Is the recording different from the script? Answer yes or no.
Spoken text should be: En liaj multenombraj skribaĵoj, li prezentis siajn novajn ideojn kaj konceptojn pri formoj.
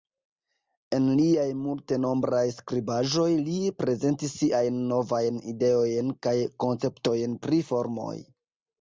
no